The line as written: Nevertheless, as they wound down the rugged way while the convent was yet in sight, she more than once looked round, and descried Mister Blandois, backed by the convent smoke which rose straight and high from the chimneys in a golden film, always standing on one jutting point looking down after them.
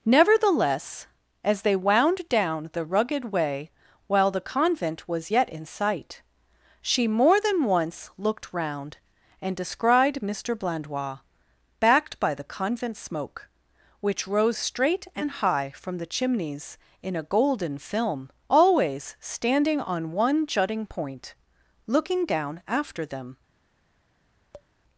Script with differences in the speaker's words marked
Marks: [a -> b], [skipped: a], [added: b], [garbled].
Nevertheless, as they wound down the rugged way while the convent was yet in sight, she more than once looked round, and descried Mister Blandois, backed by the convent smoke which rose straight and high from the chimneys in a golden film, always standing on one jutting point looking down after them.